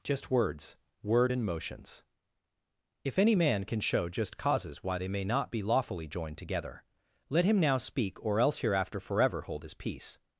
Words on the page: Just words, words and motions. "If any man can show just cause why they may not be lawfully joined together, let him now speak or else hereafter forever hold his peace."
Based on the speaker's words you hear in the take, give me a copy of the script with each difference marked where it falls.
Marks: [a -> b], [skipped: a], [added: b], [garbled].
Just words, [words -> word] and motions. "If any man can show just [cause -> causes] why they may not be lawfully joined together, let him now speak or else hereafter forever hold his peace."